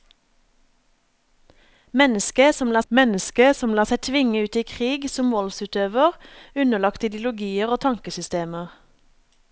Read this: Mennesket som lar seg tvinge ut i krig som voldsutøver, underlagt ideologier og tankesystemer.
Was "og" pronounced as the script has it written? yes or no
yes